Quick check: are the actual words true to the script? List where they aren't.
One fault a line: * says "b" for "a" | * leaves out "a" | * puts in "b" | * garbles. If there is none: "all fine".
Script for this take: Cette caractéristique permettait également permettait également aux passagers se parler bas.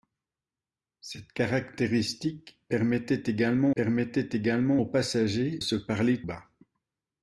all fine